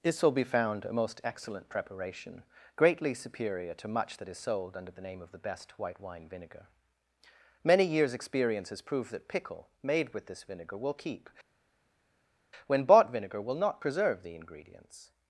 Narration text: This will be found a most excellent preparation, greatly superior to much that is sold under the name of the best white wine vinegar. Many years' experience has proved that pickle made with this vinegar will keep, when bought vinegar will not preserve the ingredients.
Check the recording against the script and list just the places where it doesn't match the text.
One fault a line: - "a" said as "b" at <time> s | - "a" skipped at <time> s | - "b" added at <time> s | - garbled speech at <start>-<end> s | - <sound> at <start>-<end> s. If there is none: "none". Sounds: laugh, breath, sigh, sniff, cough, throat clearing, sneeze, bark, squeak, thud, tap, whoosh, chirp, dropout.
none